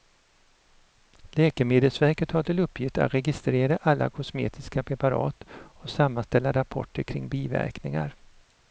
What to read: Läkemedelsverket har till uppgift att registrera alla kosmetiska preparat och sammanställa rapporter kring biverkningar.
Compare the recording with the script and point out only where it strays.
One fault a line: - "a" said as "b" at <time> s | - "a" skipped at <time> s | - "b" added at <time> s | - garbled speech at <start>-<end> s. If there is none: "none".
none